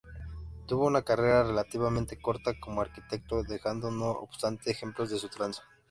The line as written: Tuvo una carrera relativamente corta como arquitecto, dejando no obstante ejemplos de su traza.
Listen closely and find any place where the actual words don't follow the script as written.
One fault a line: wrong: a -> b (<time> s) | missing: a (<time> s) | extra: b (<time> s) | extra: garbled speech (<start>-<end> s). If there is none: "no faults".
no faults